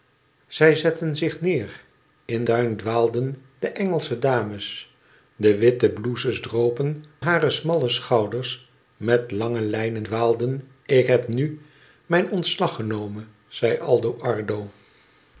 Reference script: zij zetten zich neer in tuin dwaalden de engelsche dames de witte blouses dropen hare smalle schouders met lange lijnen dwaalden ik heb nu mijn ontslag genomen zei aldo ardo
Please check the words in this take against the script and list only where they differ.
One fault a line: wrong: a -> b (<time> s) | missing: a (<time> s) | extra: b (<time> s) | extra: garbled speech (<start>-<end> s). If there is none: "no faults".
no faults